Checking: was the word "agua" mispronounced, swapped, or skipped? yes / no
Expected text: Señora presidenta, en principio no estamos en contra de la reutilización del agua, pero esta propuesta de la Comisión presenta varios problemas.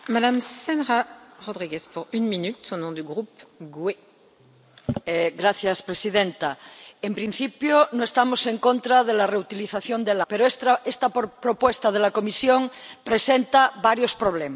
yes